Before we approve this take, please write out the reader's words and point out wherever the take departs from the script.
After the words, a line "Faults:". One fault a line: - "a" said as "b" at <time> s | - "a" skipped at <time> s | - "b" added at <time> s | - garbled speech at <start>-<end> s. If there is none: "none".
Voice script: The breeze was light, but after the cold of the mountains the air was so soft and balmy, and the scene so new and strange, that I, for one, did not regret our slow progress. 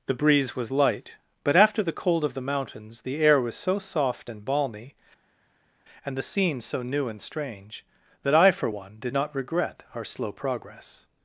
The breeze was light, but after the cold of the mountains the air was so soft and balmy, and the scene so new and strange, that I, for one, did not regret our slow progress.
Faults:
none